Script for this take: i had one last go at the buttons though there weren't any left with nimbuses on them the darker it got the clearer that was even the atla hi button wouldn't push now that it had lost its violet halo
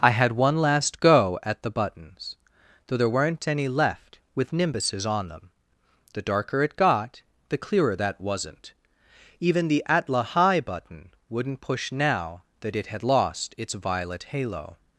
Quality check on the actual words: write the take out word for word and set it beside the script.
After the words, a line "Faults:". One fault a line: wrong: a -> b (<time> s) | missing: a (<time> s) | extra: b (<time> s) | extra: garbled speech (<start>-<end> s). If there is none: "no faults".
i had one last go at the buttons though there weren't any left with nimbuses on them the darker it got the clearer that wasn't even the atla hi button wouldn't push now that it had lost its violet halo
Faults:
wrong: was -> wasn't (8.2 s)